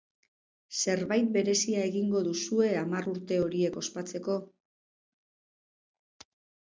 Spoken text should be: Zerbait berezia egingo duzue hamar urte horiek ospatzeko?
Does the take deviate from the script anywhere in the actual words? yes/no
no